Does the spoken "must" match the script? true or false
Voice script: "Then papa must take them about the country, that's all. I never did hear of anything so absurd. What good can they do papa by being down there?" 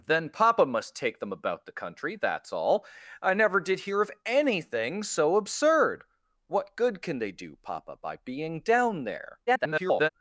true